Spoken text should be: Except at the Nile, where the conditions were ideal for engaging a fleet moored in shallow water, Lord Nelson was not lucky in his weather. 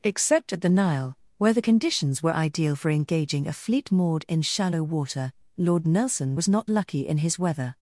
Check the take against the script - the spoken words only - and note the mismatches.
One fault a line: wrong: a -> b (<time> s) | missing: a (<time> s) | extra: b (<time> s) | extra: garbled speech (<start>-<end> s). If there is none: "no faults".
no faults